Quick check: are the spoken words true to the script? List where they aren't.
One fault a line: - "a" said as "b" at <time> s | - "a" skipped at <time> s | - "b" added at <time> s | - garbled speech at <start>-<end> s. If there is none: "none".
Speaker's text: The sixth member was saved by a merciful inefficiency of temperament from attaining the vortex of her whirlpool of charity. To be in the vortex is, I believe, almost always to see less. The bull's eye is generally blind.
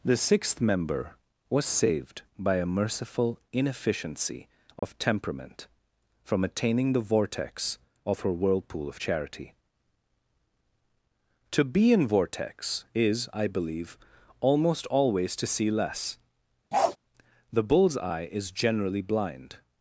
- "the" skipped at 12.1 s